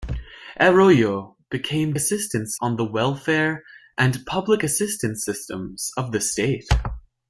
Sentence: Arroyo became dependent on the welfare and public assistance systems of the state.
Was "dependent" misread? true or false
true